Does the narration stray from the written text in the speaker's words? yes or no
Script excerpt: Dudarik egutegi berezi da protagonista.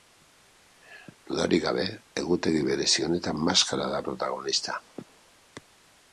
yes